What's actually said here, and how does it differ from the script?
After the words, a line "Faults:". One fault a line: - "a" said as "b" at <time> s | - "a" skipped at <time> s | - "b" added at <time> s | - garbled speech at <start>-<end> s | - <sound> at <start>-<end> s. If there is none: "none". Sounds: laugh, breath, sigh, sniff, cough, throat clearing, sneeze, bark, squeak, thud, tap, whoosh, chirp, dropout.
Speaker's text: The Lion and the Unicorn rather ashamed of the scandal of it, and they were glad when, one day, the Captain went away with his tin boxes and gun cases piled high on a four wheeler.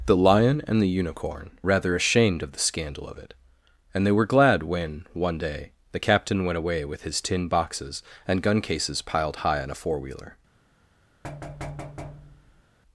The Lion and the Unicorn rather ashamed of the scandal of it, and they were glad when, one day, the Captain went away with his tin boxes and gun cases piled high on a four wheeler.
Faults:
- thud at 11.2-12.6 s